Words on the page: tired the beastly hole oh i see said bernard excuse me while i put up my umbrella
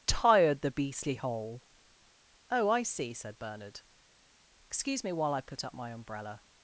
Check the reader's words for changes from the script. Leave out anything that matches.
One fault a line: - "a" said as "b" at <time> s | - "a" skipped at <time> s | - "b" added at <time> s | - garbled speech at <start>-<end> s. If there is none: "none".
none